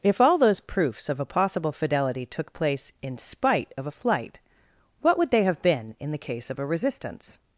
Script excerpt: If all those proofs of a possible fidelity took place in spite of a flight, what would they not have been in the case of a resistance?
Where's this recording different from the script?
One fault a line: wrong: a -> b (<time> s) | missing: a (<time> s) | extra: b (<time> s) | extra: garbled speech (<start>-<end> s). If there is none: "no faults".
missing: not (5.4 s)